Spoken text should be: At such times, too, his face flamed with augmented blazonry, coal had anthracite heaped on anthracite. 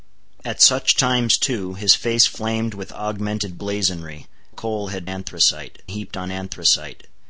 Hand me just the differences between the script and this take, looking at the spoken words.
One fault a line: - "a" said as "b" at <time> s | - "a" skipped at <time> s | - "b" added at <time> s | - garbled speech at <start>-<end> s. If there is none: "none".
none